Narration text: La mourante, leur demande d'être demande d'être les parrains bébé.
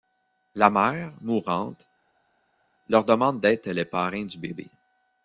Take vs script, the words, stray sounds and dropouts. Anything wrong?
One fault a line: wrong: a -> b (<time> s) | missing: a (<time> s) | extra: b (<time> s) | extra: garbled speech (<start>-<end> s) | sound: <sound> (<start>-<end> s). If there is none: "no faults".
extra: mère (0.7 s)
missing: demande d'être (3.7 s)
extra: du (4.2 s)